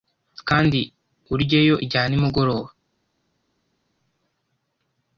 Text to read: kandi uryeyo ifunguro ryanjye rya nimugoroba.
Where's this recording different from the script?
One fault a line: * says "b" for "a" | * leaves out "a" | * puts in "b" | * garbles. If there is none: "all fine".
* leaves out "ifunguro ryanjye"